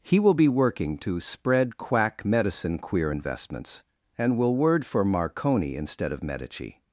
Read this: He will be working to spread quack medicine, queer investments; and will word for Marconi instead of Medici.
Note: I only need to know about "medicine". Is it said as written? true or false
true